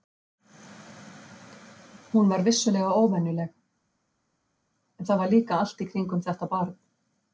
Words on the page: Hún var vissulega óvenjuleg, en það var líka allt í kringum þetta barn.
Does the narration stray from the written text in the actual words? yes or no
no